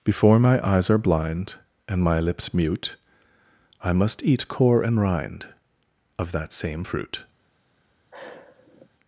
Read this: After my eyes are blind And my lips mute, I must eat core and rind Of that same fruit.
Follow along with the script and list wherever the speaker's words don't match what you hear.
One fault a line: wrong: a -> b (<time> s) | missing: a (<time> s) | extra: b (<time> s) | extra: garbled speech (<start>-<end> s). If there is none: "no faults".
wrong: After -> Before (0.0 s)